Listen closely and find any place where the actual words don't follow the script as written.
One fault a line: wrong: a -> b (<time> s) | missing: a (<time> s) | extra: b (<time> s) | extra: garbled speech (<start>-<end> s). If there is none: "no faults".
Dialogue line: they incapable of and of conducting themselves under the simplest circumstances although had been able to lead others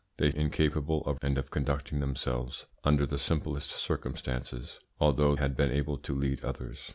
no faults